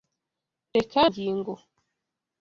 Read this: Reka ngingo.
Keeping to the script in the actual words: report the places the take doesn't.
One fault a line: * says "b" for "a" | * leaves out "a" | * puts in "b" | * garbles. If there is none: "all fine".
all fine